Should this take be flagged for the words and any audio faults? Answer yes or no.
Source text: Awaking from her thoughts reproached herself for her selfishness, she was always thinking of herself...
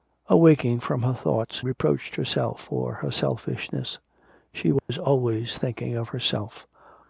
yes